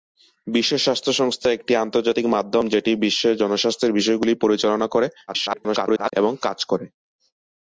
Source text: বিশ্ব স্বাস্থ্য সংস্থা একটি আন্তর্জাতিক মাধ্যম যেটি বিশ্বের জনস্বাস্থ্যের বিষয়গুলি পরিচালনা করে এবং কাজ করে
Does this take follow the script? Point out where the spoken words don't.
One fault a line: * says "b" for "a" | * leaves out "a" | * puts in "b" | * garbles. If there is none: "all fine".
* garbles